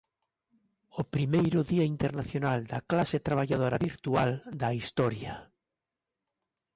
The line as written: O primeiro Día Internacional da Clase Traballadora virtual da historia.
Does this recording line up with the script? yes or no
yes